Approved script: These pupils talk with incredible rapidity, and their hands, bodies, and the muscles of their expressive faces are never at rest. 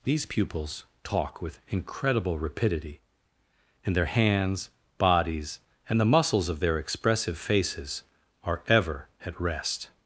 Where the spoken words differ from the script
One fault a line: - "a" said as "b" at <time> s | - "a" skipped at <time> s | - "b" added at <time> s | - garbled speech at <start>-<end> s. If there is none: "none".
- "never" said as "ever" at 8.7 s